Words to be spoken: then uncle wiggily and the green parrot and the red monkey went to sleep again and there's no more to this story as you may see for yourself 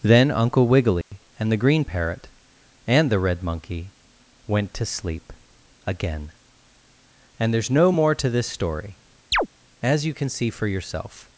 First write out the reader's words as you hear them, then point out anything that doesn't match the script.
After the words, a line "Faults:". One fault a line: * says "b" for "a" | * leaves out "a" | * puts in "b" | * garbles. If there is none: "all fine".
then uncle wiggily and the green parrot and the red monkey went to sleep again and there's no more to this story as you can see for yourself
Faults:
* says "can" for "may"